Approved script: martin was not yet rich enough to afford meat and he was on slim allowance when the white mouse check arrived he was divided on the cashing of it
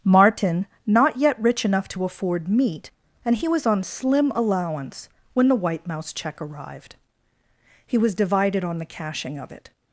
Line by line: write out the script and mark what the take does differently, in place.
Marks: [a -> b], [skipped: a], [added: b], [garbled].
martin [skipped: was] not yet rich enough to afford meat and he was on slim allowance when the white mouse check arrived he was divided on the cashing of it